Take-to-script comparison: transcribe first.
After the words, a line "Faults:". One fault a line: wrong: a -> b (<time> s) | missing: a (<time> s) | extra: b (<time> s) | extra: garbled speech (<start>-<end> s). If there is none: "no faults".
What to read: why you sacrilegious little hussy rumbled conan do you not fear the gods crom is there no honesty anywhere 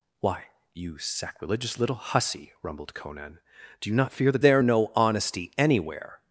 why you sacrilegious little hussy rumbled conan do you not fear the there no honesty anywhere
Faults:
missing: gods crom is (4.4 s)